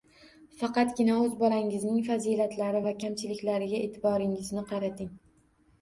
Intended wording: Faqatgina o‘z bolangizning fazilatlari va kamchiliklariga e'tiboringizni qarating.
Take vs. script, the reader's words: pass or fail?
pass